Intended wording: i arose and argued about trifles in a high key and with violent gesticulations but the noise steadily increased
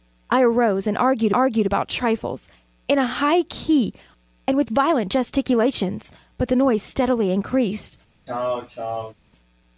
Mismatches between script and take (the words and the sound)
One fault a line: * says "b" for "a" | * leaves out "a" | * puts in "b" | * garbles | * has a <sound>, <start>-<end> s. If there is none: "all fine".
* puts in "argued"
* has a throat clearing, 8.3-9.1 s